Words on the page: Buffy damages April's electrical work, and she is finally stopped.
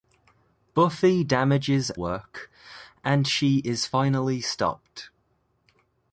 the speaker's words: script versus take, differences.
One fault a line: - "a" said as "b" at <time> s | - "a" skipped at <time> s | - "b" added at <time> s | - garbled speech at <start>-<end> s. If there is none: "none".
- "April's electrical" skipped at 1.9 s